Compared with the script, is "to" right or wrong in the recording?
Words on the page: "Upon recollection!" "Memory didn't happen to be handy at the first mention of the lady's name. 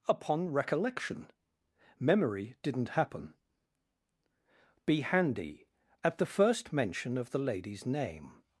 wrong